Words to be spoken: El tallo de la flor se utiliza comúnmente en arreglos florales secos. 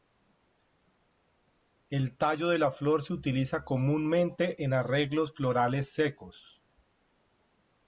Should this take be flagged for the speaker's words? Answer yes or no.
no